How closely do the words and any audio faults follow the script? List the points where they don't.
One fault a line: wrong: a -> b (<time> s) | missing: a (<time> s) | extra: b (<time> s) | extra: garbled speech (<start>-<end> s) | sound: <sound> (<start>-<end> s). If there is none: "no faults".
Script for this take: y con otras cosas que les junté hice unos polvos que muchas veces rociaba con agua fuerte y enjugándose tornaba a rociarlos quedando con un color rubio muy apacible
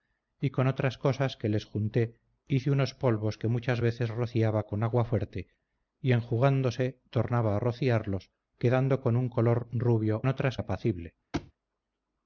wrong: muy -> otras (10.3 s)
sound: thud (11.3-11.5 s)